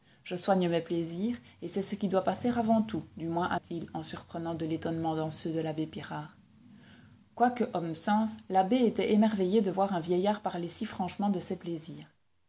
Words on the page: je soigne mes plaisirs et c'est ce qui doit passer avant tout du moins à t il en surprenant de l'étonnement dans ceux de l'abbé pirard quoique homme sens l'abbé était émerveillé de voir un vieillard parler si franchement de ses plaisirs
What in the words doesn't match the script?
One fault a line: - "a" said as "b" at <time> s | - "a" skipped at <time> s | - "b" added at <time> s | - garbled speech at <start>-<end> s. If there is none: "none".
none